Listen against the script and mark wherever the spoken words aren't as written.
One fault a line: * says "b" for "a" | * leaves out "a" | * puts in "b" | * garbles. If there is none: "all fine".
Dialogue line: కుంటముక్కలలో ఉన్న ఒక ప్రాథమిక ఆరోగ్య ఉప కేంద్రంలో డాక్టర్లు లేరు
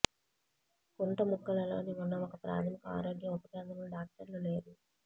all fine